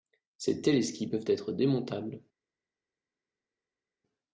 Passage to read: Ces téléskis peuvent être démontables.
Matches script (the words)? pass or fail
pass